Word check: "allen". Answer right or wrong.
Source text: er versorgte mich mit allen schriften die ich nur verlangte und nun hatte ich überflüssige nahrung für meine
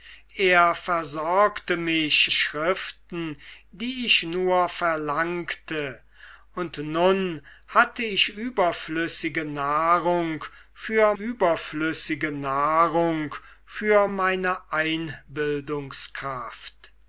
wrong